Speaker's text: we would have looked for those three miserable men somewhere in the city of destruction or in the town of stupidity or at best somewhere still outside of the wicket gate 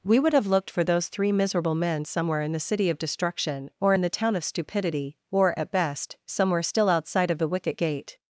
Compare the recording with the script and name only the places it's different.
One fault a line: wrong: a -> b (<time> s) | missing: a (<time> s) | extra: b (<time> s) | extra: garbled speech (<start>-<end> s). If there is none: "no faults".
no faults